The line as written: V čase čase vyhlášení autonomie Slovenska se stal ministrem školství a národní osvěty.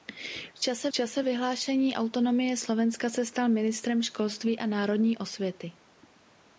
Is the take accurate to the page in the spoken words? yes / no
yes